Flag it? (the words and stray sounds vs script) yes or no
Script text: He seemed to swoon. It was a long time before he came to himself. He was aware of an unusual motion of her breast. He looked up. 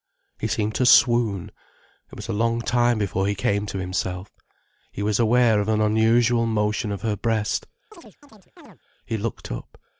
yes